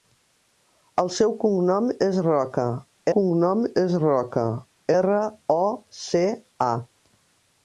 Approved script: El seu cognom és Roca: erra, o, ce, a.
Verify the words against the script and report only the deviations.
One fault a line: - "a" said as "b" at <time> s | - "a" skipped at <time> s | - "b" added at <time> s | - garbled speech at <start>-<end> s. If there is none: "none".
- "cognom és Roca" added at 3.2 s